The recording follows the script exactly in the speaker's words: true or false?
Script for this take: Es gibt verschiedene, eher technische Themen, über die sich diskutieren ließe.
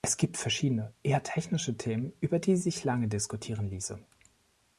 false